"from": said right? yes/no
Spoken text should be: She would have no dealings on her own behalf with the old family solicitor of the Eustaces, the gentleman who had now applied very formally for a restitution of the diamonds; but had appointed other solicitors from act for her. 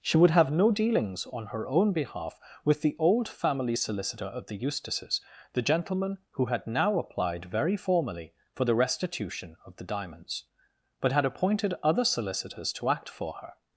no